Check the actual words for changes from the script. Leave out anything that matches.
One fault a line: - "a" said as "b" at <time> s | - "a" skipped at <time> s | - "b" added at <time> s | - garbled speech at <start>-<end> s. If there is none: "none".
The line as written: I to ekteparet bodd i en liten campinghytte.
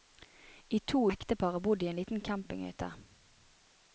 none